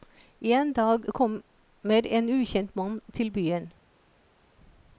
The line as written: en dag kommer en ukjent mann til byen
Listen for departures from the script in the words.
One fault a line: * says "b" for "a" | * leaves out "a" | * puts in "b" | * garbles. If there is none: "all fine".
all fine